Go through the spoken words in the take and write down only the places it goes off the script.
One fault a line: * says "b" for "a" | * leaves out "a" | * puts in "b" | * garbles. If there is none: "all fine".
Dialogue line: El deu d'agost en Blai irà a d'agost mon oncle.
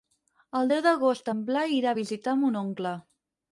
* says "visitar" for "d'agost"